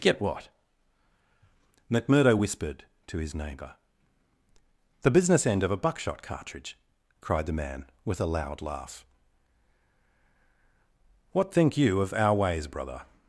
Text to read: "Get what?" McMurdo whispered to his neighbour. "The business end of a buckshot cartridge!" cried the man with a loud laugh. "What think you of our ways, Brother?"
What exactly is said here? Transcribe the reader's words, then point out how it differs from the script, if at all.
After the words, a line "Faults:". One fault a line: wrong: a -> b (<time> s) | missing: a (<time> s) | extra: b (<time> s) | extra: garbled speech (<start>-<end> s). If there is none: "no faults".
"Get what?" McMurdo whispered to his neighbour. "The business end of a buckshot cartridge!" cried the man with a loud laugh. "What think you of our ways, Brother?"
Faults:
no faults